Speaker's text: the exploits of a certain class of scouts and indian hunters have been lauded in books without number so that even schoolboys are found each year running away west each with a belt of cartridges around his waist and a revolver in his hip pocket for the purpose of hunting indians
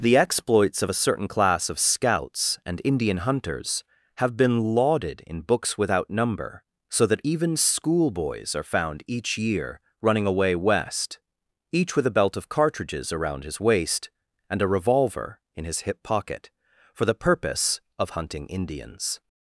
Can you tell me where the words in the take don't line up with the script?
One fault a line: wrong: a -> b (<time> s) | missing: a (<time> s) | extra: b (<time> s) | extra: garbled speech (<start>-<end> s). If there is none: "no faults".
no faults